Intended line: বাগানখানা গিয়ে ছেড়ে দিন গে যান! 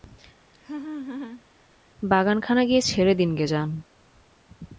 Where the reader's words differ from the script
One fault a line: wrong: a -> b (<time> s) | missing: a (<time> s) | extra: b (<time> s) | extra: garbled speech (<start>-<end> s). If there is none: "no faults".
no faults